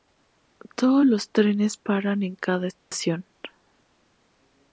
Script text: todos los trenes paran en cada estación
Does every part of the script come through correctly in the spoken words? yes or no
yes